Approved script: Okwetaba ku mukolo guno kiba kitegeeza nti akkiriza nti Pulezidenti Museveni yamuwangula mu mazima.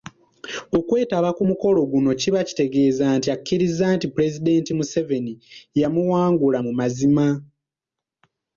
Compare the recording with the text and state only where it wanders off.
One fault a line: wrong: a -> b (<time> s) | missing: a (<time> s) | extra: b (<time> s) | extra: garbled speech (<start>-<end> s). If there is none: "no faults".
no faults